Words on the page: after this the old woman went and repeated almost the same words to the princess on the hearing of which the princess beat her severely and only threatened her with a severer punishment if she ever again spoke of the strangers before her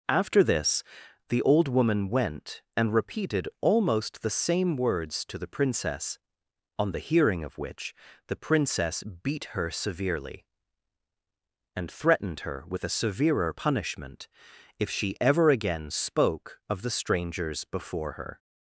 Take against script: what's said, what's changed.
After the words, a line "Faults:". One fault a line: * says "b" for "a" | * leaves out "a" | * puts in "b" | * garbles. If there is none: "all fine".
after this the old woman went and repeated almost the same words to the princess on the hearing of which the princess beat her severely and threatened her with a severer punishment if she ever again spoke of the strangers before her
Faults:
* leaves out "only"